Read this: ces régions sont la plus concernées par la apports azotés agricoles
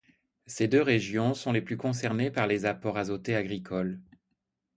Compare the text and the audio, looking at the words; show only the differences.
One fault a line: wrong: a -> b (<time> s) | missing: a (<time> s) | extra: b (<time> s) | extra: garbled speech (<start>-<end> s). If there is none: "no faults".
extra: deux (0.7 s)
wrong: la -> les (1.5 s)
wrong: la -> les (2.5 s)